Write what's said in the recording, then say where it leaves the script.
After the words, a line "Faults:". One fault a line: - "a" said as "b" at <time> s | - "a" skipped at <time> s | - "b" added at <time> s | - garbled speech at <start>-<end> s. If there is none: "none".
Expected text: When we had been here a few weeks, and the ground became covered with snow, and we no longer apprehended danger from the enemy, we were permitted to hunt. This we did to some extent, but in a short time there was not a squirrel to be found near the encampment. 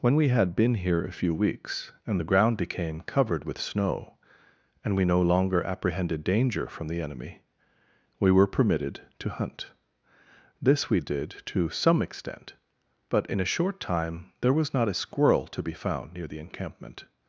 When we had been here a few weeks, and the ground became covered with snow, and we no longer apprehended danger from the enemy, we were permitted to hunt. This we did to some extent, but in a short time there was not a squirrel to be found near the encampment.
Faults:
none